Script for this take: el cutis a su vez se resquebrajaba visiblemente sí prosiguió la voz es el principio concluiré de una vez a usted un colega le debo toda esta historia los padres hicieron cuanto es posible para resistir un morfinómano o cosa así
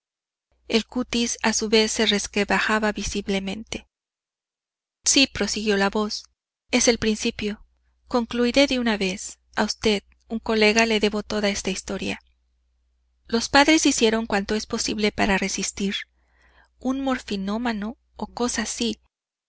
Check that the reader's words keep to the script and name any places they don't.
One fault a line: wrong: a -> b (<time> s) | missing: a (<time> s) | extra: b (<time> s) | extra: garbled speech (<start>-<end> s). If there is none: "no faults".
no faults